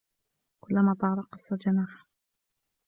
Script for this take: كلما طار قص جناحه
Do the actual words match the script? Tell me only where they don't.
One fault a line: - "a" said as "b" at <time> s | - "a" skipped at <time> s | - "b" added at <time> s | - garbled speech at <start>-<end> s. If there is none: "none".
none